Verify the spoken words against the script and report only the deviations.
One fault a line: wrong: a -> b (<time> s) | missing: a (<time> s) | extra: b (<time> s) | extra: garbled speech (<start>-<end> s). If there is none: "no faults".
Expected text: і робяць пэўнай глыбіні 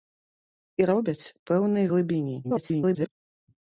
extra: garbled speech (2.4-3.1 s)